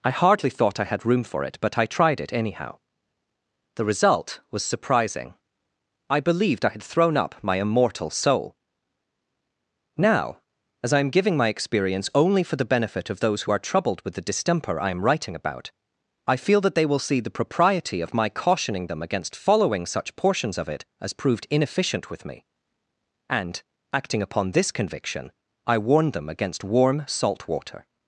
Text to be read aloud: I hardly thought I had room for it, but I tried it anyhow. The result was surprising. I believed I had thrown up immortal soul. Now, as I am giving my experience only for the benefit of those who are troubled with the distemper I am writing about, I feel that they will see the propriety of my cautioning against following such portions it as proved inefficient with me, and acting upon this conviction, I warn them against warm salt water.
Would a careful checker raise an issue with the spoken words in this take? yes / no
yes